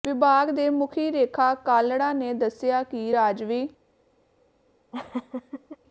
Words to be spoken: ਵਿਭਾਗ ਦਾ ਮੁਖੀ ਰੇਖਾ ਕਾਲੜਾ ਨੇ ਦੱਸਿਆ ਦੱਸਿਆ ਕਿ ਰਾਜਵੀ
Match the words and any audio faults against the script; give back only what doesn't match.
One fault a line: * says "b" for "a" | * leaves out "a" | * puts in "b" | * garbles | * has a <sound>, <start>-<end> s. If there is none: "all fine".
* says "ਦੇ" for "ਦਾ"
* leaves out "ਦੱਸਿਆ"
* has a laugh, 4.9-5.8 s